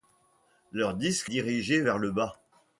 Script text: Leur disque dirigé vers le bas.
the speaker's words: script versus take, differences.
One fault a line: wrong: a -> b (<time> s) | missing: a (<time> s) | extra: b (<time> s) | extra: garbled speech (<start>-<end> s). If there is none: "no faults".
no faults